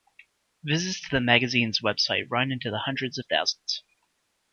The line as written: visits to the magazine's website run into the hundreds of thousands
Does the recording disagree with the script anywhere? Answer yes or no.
no